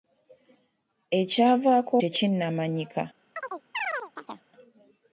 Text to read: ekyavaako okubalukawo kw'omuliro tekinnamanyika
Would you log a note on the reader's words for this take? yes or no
yes